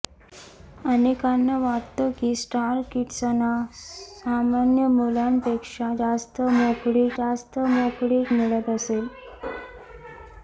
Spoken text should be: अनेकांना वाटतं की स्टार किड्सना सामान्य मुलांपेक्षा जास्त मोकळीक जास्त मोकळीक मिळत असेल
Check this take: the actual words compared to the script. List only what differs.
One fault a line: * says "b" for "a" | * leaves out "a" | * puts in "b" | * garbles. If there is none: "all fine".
all fine